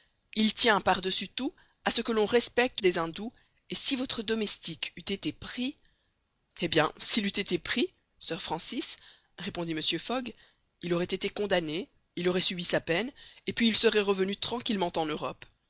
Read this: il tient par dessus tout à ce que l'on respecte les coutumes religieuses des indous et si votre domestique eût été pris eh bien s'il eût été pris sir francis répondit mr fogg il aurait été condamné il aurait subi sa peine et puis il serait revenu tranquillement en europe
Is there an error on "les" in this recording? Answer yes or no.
yes